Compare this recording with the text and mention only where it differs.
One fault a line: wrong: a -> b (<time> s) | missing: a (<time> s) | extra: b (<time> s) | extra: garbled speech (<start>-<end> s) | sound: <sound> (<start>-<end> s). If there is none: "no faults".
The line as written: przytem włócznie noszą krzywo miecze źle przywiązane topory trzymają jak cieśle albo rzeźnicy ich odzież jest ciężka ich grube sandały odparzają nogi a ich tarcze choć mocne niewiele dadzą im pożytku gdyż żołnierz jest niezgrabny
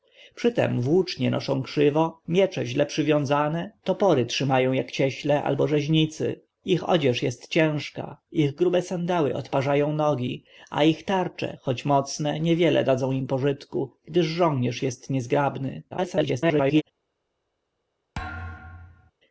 extra: garbled speech (15.9-16.8 s)
sound: thud (18.1-19.1 s)